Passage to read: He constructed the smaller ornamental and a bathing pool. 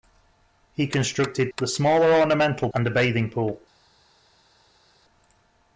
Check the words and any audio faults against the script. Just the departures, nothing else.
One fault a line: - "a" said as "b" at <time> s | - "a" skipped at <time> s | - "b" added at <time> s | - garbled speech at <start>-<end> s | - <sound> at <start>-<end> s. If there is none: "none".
none